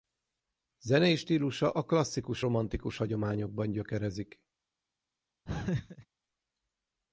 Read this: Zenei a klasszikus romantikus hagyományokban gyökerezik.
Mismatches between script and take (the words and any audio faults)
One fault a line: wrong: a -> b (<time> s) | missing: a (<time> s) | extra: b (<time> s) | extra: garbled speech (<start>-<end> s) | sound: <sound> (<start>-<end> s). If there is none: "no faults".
extra: stílusa (1.1 s)
sound: laugh (5.5-6.1 s)